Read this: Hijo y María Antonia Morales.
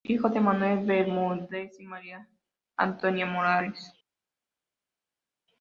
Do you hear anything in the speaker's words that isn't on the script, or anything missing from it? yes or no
yes